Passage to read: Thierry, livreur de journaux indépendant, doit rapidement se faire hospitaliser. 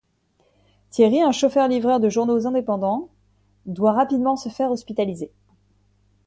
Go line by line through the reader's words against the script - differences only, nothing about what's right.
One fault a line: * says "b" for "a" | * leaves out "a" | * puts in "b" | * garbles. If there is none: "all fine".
* puts in "un chauffeur"